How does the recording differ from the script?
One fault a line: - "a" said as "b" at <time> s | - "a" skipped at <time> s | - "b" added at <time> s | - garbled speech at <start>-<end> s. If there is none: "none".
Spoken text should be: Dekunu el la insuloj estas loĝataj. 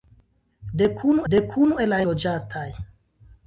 - "dekunu" added at 1.3 s
- "insuloj estas" skipped at 2.0 s